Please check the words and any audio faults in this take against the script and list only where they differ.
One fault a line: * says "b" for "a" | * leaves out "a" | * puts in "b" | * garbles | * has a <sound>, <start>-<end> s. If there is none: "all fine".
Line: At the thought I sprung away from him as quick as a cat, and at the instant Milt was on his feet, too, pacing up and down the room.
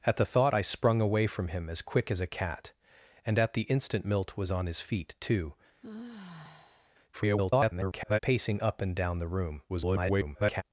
* has a sigh, 5.8-7.0 s
* garbles
* garbles